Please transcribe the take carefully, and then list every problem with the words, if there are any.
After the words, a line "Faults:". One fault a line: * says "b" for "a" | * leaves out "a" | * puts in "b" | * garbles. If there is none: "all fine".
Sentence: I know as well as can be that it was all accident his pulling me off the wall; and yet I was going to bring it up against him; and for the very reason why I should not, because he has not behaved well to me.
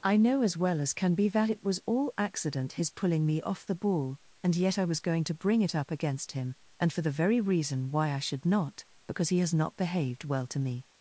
I know as well as can be that it was all accident his pulling me off the ball; and yet I was going to bring it up against him; and for the very reason why I should not, because he has not behaved well to me.
Faults:
* says "ball" for "wall"